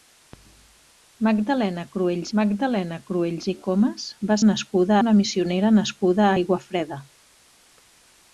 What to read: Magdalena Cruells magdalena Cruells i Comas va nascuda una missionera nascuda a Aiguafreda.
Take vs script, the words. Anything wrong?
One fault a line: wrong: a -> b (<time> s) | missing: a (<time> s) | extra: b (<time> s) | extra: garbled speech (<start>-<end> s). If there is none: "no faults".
no faults